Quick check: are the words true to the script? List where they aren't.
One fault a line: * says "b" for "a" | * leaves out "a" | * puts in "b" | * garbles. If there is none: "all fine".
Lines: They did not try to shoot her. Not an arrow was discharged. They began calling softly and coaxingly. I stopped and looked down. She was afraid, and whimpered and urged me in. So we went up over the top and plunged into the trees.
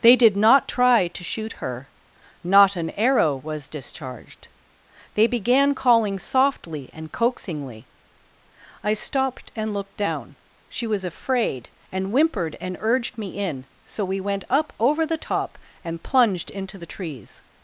all fine